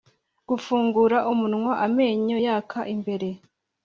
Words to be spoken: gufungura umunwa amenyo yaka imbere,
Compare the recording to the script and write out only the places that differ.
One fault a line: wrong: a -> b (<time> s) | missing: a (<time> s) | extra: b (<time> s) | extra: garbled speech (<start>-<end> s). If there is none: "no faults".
no faults